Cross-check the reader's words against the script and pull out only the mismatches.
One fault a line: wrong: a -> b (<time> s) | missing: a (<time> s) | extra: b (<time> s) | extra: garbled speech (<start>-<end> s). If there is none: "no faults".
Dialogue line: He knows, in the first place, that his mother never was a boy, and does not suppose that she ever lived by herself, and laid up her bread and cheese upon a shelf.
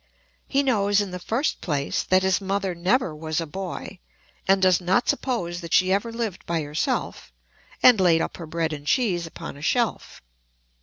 no faults